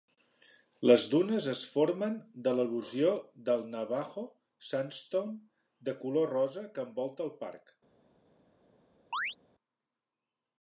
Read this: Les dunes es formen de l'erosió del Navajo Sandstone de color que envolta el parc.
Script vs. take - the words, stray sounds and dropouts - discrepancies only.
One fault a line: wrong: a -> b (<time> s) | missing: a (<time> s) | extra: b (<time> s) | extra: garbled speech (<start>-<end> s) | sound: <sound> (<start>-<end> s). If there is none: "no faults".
extra: rosa (6.4 s)
sound: chirp (9.1-9.4 s)